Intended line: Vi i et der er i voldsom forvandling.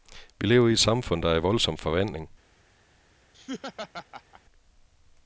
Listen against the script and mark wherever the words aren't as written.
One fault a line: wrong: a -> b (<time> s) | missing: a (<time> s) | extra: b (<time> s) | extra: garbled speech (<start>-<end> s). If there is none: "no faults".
extra: lever (0.5 s)
extra: samfund (0.8 s)